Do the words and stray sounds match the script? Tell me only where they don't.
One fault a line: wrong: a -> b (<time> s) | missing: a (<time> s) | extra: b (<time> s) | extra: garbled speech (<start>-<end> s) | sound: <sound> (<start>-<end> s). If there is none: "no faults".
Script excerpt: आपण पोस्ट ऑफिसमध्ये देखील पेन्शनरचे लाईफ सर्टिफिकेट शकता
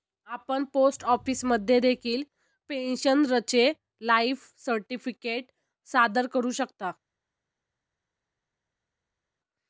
extra: सादर करू (5.9 s)